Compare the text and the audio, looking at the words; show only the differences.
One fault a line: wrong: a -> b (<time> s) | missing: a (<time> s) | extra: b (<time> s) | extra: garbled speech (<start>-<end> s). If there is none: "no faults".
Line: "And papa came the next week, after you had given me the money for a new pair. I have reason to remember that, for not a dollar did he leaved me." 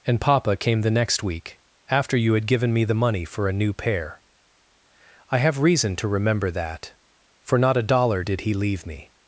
wrong: leaved -> leave (8.5 s)